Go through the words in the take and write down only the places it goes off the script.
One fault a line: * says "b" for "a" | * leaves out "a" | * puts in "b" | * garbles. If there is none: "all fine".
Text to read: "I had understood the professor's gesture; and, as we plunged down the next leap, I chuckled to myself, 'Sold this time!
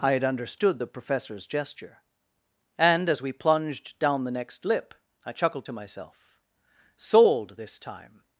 * says "lip" for "leap"